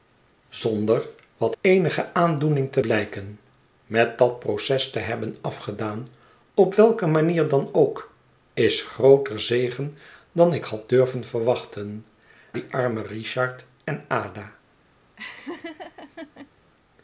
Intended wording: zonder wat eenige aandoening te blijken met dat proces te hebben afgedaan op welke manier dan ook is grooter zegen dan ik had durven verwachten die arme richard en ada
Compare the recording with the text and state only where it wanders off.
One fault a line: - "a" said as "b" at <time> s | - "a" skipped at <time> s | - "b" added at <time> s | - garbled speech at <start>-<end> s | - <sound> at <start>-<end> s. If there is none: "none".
- laugh at 15.2-16.5 s